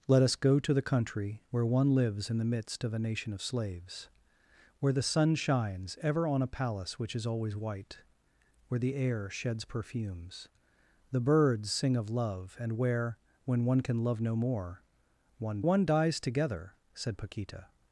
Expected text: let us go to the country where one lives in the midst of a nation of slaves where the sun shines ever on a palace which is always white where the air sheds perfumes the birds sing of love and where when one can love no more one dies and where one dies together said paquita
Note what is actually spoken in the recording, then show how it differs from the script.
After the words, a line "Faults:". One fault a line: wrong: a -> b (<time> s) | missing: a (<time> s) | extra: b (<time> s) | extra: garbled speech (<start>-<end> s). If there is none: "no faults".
let us go to the country where one lives in the midst of a nation of slaves where the sun shines ever on a palace which is always white where the air sheds perfumes the birds sing of love and where when one can love no more one one dies together said paquita
Faults:
missing: dies and where (15.6 s)